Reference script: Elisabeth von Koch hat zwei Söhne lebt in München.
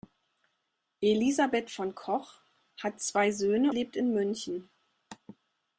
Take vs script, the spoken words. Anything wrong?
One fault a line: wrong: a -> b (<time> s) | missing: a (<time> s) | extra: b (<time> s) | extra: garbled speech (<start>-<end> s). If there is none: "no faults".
no faults